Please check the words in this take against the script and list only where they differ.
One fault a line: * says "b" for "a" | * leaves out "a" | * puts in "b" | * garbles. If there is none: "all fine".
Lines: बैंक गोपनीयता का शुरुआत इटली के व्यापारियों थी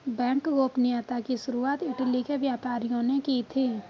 * says "की" for "का"
* puts in "ने की"